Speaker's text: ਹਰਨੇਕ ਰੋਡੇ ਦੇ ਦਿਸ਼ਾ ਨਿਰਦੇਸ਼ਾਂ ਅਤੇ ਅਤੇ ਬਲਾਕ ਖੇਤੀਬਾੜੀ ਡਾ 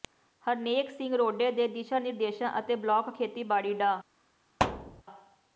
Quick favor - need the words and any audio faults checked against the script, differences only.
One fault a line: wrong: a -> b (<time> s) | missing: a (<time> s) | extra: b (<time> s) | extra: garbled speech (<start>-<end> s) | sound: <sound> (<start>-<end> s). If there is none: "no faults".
extra: ਸਿੰਘ (0.9 s)
missing: ਅਤੇ (2.8 s)
sound: thud (4.6-5.0 s)